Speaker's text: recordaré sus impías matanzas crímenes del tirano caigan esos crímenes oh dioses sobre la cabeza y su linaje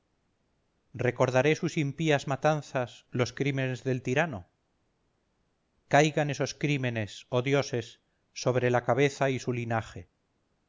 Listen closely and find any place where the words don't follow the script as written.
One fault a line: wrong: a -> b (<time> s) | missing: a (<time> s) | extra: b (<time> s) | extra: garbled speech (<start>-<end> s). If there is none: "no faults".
extra: los (3.1 s)